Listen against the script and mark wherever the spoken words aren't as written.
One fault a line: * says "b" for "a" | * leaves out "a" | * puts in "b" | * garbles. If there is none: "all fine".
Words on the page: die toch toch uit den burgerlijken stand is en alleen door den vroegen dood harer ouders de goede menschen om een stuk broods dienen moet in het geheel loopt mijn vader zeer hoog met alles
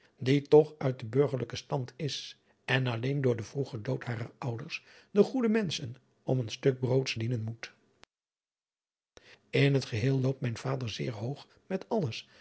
* leaves out "toch"